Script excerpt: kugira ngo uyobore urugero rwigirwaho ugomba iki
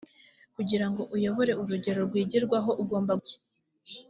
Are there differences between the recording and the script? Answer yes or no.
no